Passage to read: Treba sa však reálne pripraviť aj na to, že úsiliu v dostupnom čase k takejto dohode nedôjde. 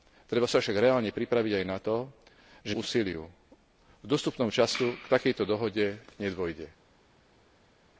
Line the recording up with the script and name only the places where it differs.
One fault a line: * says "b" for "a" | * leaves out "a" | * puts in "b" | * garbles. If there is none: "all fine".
all fine